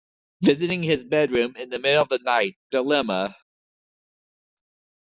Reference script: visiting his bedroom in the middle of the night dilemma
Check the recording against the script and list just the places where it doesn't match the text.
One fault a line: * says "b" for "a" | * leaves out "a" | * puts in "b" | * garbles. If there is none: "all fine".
all fine